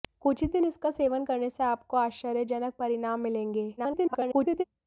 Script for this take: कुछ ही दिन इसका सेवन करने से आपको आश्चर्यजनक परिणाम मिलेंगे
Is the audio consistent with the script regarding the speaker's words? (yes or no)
no